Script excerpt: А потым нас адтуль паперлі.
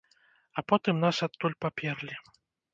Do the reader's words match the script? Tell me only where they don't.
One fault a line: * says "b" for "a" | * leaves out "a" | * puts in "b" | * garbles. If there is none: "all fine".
all fine